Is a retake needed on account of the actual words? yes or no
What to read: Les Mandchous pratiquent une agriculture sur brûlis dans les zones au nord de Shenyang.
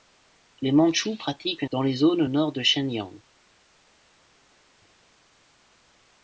yes